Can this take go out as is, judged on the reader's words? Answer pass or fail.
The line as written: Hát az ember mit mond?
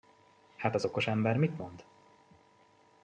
fail